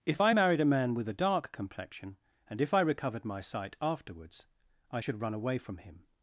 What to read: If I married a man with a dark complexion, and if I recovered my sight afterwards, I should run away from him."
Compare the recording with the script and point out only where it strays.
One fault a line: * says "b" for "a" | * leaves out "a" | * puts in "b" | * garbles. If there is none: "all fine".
all fine